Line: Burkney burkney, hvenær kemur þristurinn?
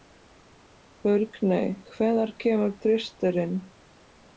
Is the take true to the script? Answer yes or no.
no